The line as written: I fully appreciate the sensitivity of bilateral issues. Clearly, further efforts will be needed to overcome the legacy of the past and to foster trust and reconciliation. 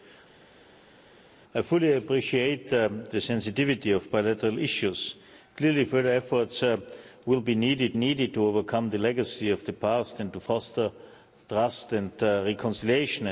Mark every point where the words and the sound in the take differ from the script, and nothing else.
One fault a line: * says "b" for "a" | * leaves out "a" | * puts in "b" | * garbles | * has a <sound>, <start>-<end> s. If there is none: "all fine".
* puts in "needed"